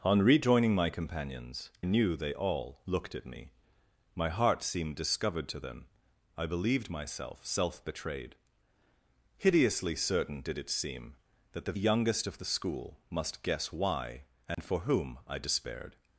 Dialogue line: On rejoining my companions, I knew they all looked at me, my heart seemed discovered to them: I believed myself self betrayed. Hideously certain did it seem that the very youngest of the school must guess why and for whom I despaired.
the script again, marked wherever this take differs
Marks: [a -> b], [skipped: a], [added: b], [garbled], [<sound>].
On rejoining my companions, [skipped: I] knew they all looked at me, my heart seemed discovered to them: I believed myself self betrayed. Hideously certain did it seem that the [skipped: very] youngest of the school must guess why and [dropout] for whom I despaired.